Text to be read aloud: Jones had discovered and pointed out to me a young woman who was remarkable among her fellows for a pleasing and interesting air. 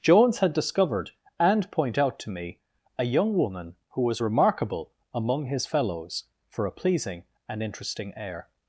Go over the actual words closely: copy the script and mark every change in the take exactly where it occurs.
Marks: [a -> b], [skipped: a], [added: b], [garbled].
Jones had discovered and [pointed -> point] out to me a young woman who was remarkable among [her -> his] fellows for a pleasing and interesting air.